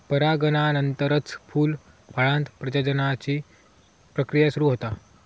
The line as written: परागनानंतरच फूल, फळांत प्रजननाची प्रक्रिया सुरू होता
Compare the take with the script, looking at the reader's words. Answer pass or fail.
pass